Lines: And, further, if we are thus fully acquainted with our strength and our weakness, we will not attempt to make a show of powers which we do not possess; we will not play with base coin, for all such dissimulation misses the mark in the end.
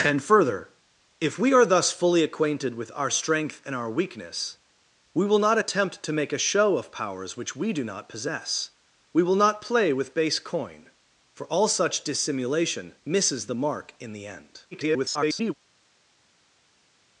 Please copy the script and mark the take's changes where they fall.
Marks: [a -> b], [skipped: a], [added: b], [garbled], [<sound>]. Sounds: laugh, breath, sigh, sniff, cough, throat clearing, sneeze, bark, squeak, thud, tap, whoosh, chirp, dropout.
And, further, if we are thus fully acquainted with our strength and our weakness, we will not attempt to make a show of powers which we do not possess; we will not play with base coin, for all such dissimulation misses the mark in the end. [garbled]